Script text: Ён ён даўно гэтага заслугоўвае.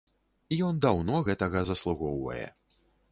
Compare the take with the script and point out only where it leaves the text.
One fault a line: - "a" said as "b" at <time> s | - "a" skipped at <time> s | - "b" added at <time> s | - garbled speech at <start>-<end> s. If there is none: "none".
- "ён" skipped at 0.8 s